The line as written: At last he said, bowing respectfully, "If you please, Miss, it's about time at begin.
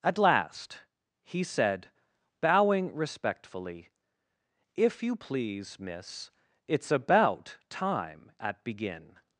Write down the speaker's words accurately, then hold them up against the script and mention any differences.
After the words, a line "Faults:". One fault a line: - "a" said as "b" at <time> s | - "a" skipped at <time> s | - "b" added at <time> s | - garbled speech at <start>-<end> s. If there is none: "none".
At last he said, bowing respectfully, "If you please, Miss, it's about time at begin.
Faults:
none